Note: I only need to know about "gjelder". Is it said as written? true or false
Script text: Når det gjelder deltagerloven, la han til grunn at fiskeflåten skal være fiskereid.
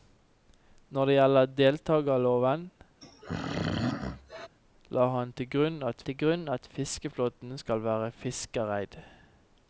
true